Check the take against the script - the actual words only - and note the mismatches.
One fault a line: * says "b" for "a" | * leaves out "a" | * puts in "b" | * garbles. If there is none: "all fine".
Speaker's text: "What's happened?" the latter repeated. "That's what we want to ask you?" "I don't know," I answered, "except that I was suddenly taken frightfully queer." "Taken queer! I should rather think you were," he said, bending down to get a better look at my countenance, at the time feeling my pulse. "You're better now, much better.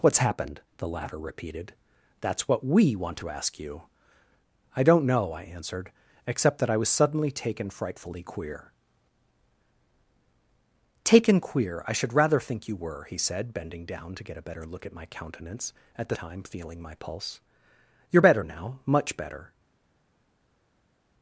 all fine